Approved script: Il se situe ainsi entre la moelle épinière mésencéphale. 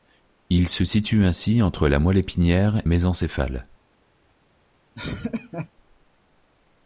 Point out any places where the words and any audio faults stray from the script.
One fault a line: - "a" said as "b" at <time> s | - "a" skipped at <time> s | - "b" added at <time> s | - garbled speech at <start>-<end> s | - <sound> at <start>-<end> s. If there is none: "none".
- laugh at 4.9-5.7 s